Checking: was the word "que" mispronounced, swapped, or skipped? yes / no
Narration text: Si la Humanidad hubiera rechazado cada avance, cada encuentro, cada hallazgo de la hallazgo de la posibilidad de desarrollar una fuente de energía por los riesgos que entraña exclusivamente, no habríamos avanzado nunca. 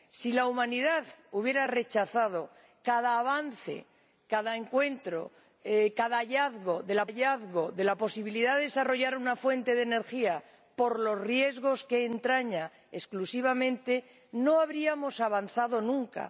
no